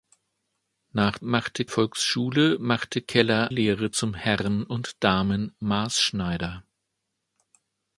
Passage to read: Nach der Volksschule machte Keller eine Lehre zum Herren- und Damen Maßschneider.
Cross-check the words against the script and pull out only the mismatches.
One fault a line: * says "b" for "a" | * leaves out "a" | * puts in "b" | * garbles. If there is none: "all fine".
* says "machte" for "der"
* leaves out "eine"